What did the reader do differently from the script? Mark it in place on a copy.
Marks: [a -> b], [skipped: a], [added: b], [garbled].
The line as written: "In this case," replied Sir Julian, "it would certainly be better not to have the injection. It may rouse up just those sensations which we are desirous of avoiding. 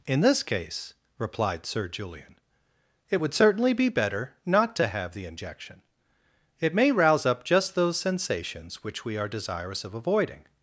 "In this case," replied Sir Julian, "it would certainly be better not to have the injection. It may rouse up just those sensations which we are desirous of avoiding.